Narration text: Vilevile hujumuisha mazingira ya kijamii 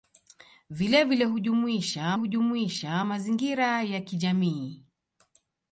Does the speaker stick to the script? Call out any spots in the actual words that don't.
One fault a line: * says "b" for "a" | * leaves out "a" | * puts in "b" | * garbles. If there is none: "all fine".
* puts in "hujumuisha"